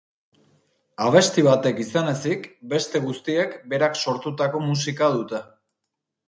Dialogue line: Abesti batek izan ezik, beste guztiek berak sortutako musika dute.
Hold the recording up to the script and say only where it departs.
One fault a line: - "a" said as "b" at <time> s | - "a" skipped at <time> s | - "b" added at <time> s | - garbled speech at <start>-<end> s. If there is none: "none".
none